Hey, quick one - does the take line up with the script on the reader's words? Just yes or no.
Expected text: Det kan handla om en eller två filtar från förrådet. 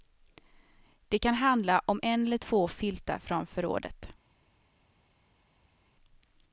yes